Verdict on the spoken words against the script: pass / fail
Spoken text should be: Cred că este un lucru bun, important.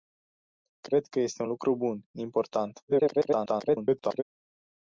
fail